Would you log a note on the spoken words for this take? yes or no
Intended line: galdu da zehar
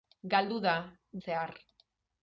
no